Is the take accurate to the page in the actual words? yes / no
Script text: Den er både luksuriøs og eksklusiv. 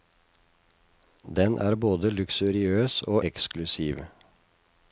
yes